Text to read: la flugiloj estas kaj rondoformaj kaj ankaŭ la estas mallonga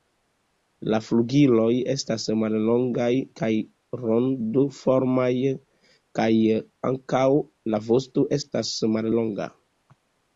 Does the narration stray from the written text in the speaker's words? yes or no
yes